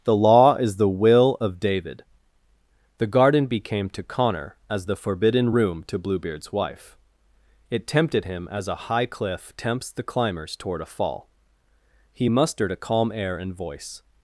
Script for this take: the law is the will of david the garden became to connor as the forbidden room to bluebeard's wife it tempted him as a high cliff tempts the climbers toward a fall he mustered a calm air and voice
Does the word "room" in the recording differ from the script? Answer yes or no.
no